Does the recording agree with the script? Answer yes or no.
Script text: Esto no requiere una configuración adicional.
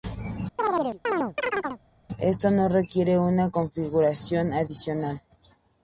yes